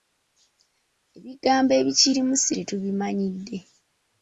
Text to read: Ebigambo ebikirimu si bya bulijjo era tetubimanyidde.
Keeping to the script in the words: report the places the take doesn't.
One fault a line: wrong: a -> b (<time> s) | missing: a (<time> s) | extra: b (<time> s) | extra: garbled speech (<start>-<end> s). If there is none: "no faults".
missing: bya bulijjo era (2.5 s)